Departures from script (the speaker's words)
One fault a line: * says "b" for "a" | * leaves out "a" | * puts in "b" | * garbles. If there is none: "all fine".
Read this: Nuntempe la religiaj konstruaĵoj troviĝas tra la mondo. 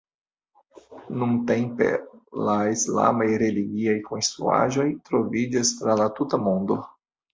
* puts in "islamaj"
* puts in "tuta"